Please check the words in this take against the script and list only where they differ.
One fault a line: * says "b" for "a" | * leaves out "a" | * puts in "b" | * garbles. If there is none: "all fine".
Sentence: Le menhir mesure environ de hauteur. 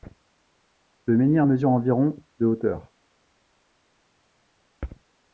all fine